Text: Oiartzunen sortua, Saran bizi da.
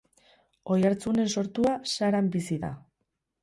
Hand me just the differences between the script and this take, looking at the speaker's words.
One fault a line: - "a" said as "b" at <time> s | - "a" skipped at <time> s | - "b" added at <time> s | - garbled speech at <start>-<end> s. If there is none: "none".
none